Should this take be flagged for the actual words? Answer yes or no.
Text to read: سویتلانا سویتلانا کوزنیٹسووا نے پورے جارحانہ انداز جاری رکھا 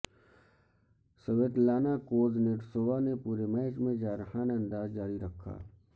yes